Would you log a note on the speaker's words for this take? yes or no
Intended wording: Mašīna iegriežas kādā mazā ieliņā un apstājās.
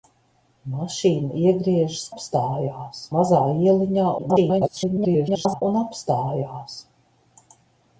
yes